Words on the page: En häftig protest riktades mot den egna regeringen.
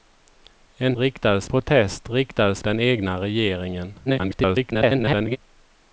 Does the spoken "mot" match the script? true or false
false